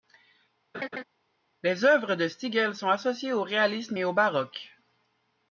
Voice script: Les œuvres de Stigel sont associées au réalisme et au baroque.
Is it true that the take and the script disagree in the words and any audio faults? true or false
true